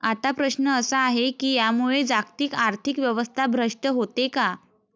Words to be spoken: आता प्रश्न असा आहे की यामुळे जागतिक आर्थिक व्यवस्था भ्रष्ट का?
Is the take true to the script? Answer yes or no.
no